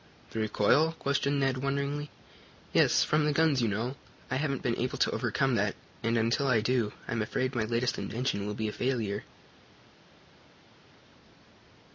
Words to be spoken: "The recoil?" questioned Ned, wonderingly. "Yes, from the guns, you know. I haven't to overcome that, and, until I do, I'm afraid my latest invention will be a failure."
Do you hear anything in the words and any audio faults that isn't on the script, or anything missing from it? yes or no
yes